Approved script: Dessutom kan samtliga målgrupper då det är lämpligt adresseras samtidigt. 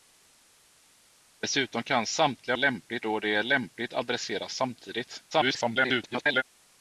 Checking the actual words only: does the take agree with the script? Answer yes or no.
no